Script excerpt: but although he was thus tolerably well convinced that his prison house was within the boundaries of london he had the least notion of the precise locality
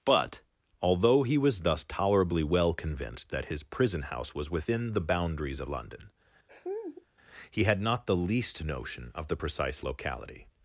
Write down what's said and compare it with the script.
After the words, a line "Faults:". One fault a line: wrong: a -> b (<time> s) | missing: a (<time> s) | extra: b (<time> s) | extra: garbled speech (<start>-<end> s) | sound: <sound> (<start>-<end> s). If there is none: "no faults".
but although he was thus tolerably well convinced that his prison house was within the boundaries of london he had not the least notion of the precise locality
Faults:
sound: laugh (6.5-7.1 s)
extra: not (7.8 s)